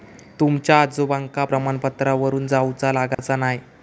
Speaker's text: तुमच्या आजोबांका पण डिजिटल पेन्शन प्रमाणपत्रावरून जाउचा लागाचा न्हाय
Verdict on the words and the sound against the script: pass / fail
fail